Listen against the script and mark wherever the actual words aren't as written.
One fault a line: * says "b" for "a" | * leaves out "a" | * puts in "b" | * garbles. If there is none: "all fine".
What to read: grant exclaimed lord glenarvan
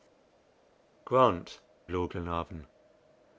* leaves out "exclaimed"